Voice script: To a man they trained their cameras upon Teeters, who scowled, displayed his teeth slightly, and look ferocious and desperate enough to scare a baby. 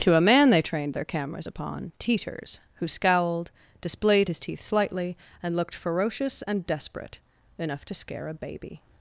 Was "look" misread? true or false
true